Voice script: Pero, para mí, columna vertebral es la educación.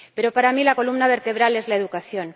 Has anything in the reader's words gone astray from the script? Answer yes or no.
yes